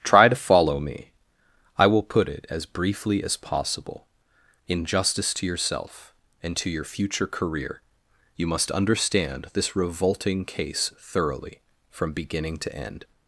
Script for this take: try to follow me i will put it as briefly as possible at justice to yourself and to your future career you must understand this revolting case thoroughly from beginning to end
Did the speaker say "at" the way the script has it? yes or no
no